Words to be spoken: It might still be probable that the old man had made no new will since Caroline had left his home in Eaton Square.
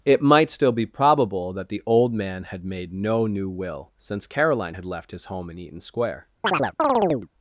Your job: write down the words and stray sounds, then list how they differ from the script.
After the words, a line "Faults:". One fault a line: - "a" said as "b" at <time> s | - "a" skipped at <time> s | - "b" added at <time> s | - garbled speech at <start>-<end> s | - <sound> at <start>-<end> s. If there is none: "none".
It might still be probable that the old man had made no new will since Caroline had left his home in Eaton Square.
Faults:
- chirp at 6.4-7.3 s